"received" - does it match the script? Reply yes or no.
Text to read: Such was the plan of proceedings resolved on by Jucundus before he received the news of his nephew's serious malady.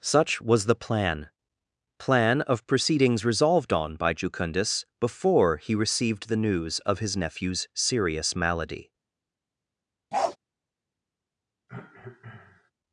yes